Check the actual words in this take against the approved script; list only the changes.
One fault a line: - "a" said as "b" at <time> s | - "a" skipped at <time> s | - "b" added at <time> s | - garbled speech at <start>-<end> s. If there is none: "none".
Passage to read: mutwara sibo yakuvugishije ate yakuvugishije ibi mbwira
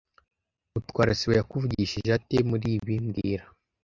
- "yakuvugishije" said as "muri" at 2.5 s